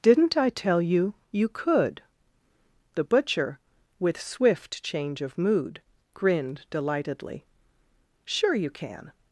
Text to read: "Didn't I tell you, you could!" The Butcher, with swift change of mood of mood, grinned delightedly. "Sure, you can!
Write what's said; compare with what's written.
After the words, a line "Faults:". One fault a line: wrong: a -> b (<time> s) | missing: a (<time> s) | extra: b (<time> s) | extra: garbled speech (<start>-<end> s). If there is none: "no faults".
"Didn't I tell you, you could!" The Butcher, with swift change of mood, grinned delightedly. "Sure, you can!
Faults:
missing: of mood (5.8 s)